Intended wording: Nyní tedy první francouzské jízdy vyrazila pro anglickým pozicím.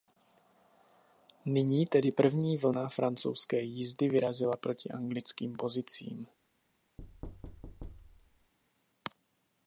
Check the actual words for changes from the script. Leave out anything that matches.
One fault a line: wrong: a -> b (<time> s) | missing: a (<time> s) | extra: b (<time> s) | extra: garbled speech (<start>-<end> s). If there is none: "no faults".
extra: vlna (2.6 s)
wrong: pro -> proti (4.6 s)